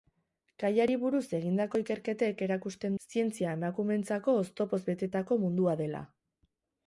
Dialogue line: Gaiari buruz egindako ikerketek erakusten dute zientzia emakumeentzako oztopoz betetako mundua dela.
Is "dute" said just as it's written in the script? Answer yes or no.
no